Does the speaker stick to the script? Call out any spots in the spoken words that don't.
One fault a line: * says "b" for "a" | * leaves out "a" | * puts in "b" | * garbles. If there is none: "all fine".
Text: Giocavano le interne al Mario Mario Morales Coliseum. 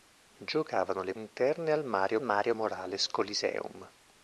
all fine